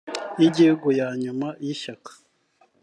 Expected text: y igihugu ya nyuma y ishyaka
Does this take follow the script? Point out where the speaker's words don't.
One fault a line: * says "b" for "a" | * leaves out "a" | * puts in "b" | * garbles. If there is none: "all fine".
all fine